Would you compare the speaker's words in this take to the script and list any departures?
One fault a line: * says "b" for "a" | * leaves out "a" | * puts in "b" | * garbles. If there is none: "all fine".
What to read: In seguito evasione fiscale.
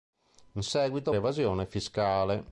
all fine